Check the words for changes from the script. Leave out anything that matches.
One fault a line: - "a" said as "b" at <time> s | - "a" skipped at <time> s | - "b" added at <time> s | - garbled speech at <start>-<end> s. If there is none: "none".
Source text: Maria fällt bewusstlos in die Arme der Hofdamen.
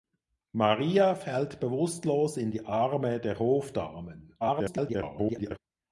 - garbled speech at 4.4-5.6 s